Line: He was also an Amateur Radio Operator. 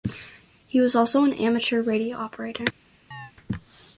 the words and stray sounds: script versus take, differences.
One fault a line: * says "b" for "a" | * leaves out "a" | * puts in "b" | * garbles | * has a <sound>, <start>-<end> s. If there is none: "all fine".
* has a chirp, 3.1-3.3 s